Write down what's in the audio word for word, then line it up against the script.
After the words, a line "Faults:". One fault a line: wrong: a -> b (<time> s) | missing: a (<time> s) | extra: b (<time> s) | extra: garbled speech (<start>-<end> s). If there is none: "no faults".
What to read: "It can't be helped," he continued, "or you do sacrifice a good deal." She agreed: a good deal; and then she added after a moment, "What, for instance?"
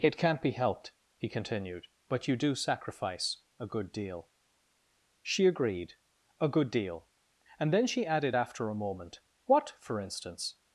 "It can't be helped," he continued, "but you do sacrifice a good deal." She agreed: a good deal; and then she added after a moment, "What, for instance?"
Faults:
wrong: or -> but (2.1 s)